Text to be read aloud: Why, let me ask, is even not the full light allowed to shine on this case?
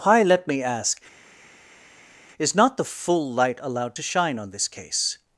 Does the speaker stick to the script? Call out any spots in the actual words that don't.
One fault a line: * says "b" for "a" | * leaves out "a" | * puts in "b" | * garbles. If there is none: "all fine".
* leaves out "even"